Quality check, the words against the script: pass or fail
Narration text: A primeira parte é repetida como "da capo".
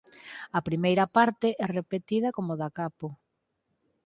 pass